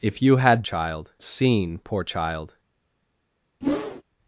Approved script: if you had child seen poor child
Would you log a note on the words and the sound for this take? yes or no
yes